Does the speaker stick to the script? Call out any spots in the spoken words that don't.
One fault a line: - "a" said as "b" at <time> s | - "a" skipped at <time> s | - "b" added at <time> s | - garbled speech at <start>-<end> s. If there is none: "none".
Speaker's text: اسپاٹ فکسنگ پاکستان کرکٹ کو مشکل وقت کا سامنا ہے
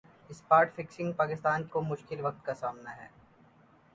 - "کرکٹ" skipped at 1.7 s